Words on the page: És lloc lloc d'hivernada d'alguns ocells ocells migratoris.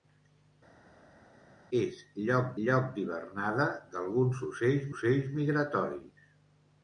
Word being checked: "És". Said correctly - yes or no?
yes